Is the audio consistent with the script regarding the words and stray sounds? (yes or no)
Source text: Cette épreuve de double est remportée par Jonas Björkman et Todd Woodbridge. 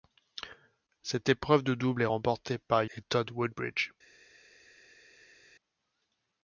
no